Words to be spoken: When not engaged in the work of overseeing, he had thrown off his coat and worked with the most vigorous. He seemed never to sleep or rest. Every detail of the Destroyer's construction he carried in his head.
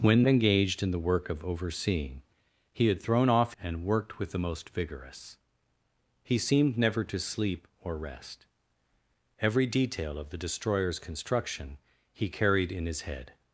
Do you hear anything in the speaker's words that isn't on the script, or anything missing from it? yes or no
yes